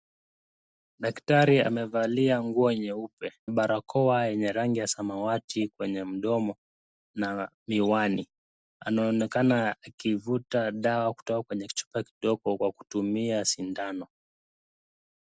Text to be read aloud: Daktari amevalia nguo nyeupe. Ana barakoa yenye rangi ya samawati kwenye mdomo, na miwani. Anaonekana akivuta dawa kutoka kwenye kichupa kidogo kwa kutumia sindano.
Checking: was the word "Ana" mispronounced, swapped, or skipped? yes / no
yes